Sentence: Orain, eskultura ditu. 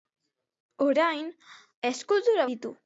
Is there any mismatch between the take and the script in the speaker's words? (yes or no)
no